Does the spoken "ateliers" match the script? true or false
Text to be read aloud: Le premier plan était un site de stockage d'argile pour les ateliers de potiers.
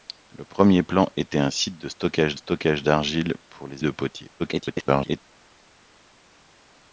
false